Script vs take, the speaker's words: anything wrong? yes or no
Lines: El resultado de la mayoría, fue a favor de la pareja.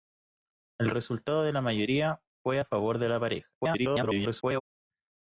yes